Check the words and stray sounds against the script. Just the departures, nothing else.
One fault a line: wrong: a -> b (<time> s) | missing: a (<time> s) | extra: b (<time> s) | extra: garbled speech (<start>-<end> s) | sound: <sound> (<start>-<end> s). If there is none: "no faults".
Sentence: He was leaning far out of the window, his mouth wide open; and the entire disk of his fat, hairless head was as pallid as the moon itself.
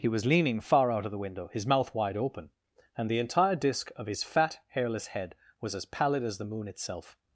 no faults